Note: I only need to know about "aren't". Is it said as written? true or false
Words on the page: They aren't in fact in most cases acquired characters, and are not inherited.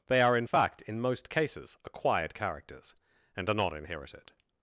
false